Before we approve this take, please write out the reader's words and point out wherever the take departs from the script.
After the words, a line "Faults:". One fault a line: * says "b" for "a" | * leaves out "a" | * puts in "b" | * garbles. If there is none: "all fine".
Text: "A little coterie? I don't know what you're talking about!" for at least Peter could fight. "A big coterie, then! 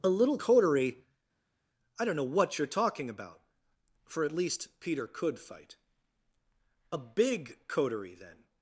"A little coterie? I don't know what you're talking about!" for at least Peter could fight. "A big coterie, then!
Faults:
all fine